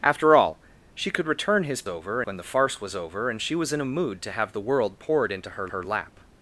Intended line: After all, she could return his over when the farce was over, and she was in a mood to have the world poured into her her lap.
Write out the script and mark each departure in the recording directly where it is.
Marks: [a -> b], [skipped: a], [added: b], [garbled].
After all, she could return his over when the farce was over, and she was in a mood to have the world poured into her her lap.